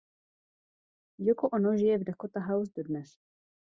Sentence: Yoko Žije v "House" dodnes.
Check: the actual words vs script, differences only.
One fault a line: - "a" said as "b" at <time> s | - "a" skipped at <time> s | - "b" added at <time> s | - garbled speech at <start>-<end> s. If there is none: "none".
- "Ono" added at 1.5 s
- "Dakota" added at 2.0 s